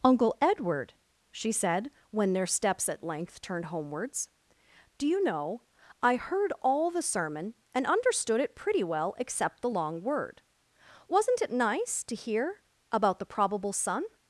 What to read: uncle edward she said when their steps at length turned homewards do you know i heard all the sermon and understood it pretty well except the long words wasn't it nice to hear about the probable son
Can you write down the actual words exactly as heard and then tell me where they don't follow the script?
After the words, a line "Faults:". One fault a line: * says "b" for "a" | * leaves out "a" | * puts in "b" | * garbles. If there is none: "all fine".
uncle edward she said when their steps at length turned homewards do you know i heard all the sermon and understood it pretty well except the long word wasn't it nice to hear about the probable son
Faults:
* says "word" for "words"